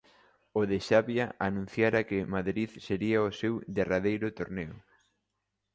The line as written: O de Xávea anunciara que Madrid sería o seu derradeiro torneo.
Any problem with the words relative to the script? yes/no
no